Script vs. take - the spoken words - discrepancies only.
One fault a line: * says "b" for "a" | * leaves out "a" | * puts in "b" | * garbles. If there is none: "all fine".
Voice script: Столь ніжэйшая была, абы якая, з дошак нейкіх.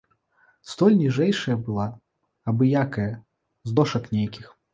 all fine